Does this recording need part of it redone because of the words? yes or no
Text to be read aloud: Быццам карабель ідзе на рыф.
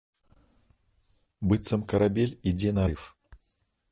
no